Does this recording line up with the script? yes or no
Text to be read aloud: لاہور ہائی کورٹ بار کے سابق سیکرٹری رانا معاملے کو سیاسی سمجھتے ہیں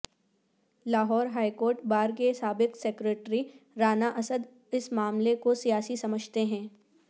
no